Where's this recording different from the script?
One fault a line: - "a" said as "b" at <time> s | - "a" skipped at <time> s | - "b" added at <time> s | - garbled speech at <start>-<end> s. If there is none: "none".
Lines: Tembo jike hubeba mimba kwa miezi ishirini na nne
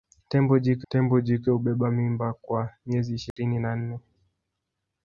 - "tembo jike" added at 0.9 s